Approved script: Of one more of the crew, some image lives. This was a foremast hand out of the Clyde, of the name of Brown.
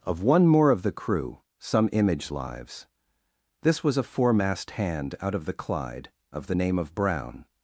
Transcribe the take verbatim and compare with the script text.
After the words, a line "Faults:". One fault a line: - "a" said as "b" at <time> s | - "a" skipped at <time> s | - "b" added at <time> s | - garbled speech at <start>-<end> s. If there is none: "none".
Of one more of the crew, some image lives. This was a foremast hand out of the Clyde, of the name of Brown.
Faults:
none